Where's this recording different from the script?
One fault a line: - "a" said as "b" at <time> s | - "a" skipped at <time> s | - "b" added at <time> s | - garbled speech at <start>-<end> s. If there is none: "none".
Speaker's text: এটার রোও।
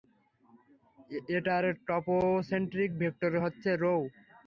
- "টপোসেন্ট্রিক ভেক্টর হচ্ছে" added at 1.9 s